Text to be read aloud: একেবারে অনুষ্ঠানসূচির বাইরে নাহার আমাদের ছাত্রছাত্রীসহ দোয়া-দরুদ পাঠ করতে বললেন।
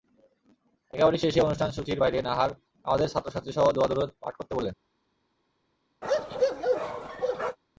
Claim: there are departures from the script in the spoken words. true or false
true